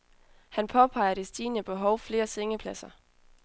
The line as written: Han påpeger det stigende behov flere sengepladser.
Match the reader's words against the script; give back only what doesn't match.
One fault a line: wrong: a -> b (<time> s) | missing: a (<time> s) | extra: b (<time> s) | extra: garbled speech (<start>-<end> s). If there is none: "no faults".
no faults